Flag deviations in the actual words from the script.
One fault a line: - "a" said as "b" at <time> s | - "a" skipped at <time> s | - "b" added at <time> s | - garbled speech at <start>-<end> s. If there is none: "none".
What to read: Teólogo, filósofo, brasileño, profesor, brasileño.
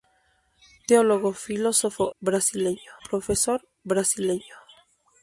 none